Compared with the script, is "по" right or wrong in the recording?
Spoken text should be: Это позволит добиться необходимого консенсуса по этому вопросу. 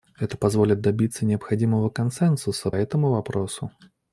wrong